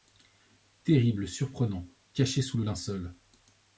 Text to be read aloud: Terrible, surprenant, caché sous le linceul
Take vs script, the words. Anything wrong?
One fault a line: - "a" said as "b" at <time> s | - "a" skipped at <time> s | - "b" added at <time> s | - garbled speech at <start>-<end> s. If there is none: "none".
none